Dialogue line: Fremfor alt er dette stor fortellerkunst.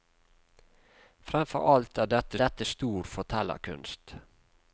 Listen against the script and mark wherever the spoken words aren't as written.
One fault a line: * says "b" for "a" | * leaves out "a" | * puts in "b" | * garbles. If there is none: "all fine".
* puts in "dette"